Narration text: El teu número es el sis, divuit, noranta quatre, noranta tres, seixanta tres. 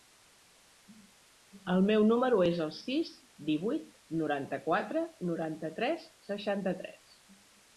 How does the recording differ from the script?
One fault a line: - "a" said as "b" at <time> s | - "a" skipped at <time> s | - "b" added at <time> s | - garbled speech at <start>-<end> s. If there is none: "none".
- "teu" said as "meu" at 1.9 s